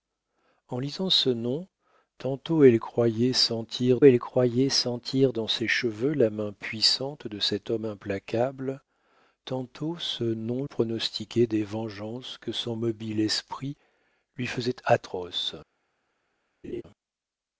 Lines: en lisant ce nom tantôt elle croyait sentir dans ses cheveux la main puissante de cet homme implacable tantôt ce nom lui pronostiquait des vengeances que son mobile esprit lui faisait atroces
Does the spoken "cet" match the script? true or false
true